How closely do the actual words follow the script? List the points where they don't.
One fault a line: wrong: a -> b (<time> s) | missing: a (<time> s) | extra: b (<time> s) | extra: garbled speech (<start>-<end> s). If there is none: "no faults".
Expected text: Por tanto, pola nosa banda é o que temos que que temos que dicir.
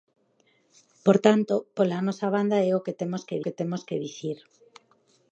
no faults